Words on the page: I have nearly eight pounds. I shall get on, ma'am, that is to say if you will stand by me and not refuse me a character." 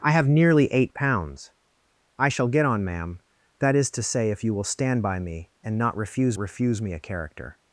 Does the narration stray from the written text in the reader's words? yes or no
yes